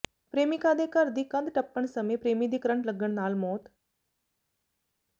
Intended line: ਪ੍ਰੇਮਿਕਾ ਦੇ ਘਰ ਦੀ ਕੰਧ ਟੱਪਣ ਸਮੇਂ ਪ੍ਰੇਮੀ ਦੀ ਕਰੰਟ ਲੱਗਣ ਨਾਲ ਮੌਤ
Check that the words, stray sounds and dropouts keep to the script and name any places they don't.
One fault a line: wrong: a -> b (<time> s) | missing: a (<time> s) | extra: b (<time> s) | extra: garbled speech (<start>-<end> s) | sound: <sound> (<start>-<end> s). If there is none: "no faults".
no faults